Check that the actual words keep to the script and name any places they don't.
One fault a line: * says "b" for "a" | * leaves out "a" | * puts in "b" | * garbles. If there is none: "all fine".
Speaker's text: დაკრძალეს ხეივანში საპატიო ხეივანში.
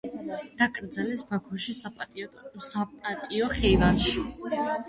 * says "ბაქოში" for "ხეივანში"